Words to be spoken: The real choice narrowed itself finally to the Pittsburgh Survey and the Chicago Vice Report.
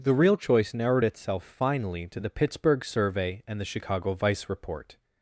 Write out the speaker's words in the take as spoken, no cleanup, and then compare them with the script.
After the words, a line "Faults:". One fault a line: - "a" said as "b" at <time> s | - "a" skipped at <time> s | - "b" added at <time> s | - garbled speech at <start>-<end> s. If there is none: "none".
The real choice narrowed itself finally to the Pittsburgh Survey and the Chicago Vice Report.
Faults:
none